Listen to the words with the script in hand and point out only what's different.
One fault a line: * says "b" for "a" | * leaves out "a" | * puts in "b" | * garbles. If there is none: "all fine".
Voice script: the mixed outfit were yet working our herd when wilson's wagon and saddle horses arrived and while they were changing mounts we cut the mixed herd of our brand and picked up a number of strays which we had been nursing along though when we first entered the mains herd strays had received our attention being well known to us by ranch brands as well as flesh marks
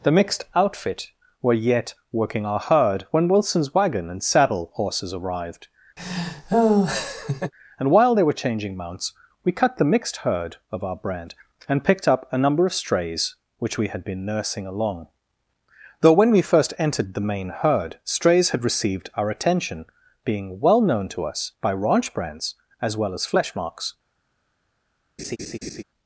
* says "main" for "mains"